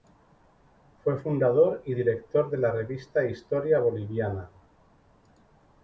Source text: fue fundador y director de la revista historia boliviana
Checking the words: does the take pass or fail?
pass